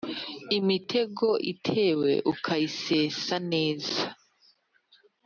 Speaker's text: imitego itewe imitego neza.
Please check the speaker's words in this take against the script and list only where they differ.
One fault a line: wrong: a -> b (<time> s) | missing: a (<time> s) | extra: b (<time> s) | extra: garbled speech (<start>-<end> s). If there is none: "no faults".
wrong: imitego -> ukayisesa (2.3 s)